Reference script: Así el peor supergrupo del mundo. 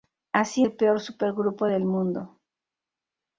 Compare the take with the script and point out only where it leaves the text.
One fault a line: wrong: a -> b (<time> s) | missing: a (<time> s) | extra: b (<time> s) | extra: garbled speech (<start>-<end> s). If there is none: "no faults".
no faults